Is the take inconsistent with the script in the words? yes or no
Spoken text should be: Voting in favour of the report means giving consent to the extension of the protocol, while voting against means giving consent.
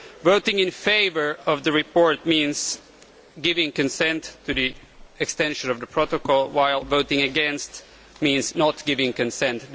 yes